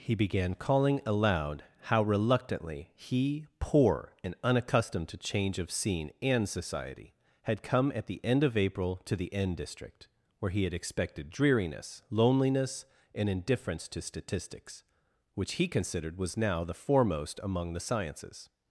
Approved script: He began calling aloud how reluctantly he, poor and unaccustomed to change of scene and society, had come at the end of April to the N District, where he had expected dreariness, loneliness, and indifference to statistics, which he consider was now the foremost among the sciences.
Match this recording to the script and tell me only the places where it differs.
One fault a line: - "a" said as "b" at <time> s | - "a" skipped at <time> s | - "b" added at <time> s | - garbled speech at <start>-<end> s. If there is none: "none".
- "consider" said as "considered" at 15.7 s